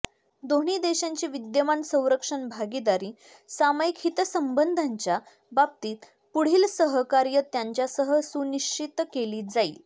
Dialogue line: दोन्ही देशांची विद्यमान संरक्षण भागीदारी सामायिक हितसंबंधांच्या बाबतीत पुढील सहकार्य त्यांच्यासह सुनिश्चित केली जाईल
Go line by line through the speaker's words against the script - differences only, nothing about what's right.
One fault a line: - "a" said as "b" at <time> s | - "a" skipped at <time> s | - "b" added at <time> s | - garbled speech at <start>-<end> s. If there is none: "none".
none